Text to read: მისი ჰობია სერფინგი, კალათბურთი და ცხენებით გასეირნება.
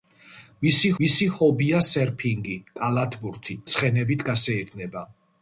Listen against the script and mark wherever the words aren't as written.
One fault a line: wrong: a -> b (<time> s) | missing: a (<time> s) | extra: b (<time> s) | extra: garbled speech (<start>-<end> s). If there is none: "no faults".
extra: მისი (1.0 s)
missing: და (3.6 s)